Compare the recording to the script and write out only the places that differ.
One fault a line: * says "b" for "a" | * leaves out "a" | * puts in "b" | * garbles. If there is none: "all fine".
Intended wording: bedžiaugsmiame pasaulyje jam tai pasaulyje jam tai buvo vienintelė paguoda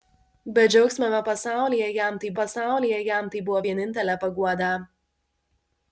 all fine